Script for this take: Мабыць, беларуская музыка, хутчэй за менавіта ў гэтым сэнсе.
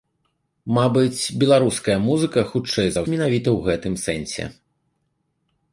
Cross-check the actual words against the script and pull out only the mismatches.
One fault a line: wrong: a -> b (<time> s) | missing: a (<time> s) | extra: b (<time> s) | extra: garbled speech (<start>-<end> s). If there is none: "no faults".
no faults